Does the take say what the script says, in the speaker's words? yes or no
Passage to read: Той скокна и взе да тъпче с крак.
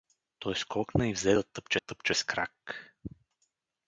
no